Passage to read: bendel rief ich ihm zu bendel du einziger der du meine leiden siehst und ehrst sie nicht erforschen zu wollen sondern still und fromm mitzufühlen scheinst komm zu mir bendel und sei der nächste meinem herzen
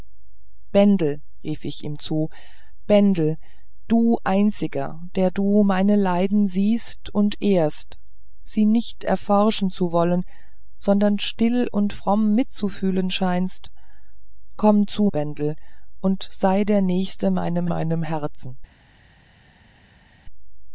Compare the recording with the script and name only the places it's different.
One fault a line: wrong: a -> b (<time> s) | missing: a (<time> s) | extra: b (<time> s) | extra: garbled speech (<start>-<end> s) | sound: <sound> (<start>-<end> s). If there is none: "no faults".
missing: mir (15.1 s)
extra: meinem (17.6 s)